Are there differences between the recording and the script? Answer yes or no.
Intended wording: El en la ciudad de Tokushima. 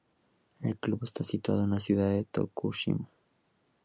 yes